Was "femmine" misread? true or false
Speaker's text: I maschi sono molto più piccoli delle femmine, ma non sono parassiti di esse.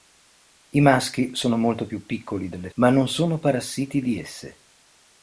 true